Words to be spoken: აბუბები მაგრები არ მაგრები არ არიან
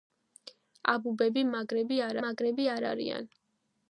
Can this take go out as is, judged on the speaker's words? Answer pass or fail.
pass